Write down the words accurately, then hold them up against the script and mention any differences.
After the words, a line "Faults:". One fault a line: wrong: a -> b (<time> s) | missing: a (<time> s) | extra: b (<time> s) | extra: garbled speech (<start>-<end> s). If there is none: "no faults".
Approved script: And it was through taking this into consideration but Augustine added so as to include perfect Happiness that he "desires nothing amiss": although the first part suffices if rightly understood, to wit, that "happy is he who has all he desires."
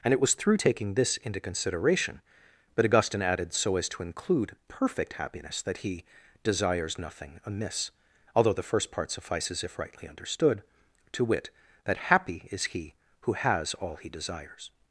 And it was through taking this into consideration but Augustine added so as to include perfect Happiness that he "desires nothing amiss": although the first part suffices if rightly understood, to wit, that "happy is he who has all he desires."
Faults:
no faults